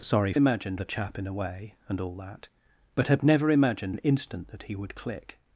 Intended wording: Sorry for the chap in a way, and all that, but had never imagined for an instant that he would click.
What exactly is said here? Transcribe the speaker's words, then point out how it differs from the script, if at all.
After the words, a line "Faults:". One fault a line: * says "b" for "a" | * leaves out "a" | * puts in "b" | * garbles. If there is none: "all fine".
Sorry imagined the chap in a way, and all that, but had never imagined an instant that he would click.
Faults:
* says "imagined" for "for"
* leaves out "for"